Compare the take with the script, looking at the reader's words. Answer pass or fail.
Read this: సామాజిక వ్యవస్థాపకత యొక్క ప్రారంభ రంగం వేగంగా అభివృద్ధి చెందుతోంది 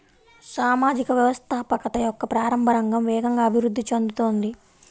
pass